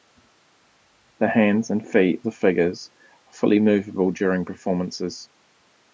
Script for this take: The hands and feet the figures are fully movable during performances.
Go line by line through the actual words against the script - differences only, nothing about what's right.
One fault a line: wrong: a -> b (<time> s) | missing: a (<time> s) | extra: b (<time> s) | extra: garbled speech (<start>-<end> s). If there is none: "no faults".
no faults